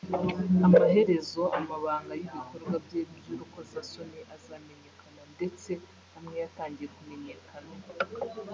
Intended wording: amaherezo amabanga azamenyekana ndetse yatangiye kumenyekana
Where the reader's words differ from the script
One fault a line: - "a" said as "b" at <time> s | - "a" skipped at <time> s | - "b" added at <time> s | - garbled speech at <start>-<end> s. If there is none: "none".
- "y'ibikorwa bye by'urukozasoni" added at 2.2 s
- "amwe" added at 6.2 s